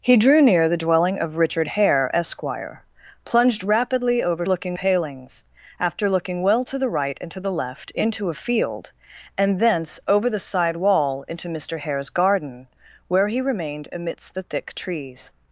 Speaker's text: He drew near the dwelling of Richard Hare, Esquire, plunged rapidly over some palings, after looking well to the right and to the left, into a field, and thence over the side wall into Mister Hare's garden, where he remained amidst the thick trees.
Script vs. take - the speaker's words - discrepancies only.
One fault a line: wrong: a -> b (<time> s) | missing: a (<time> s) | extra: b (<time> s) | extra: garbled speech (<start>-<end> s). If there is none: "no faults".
wrong: some -> looking (4.4 s)